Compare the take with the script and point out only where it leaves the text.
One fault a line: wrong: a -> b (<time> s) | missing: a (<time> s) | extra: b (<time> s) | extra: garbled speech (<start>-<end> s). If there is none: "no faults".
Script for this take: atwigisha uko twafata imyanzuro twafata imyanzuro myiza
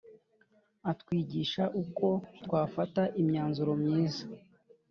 missing: twafata imyanzuro (3.7 s)